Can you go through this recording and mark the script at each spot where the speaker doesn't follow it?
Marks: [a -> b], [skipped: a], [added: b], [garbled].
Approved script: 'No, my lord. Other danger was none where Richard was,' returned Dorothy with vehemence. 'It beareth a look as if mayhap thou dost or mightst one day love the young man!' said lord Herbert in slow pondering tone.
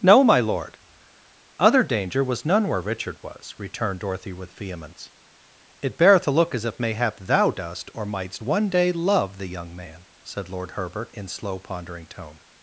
'No, my lord. Other danger was none where Richard was,' returned Dorothy with vehemence. 'It beareth a look as if mayhap thou dost or mightst one day love the young man!' said lord Herbert in slow pondering tone.